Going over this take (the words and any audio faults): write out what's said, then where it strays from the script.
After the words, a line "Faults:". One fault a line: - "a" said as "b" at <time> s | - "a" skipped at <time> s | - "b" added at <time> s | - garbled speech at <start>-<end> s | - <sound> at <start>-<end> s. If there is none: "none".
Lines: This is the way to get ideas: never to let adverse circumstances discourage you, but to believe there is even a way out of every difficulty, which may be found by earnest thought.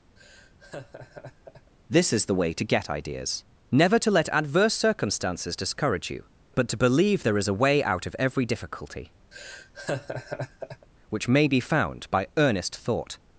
This is the way to get ideas: never to let adverse circumstances discourage you, but to believe there is a way out of every difficulty, which may be found by earnest thought.
Faults:
- laugh at 0.2-1.7 s
- "even" skipped at 7.5 s
- laugh at 9.3-10.9 s